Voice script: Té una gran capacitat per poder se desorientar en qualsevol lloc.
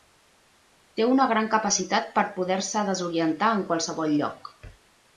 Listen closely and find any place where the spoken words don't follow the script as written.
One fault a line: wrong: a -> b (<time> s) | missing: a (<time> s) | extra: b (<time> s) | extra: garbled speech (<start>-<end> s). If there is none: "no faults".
no faults